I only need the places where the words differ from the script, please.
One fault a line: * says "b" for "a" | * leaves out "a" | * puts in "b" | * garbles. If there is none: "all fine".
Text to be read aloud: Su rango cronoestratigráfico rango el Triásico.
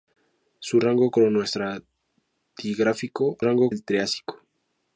all fine